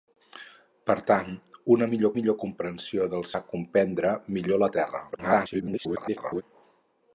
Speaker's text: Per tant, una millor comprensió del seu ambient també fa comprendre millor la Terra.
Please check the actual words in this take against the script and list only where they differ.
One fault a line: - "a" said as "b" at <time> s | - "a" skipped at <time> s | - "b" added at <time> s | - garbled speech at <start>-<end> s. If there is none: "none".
- "millor" added at 2.2 s
- "seu ambient també" skipped at 3.3 s
- garbled speech at 5.1-6.4 s